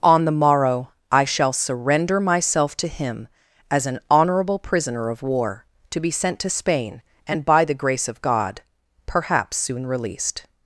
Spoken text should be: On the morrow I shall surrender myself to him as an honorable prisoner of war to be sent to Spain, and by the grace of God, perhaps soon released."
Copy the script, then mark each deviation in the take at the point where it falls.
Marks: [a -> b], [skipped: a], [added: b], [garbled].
On the morrow I shall surrender myself to him as an honorable prisoner of war to be sent to Spain, and by the grace of God, perhaps soon released."